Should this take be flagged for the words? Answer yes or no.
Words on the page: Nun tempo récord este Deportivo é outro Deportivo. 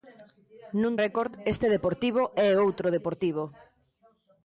yes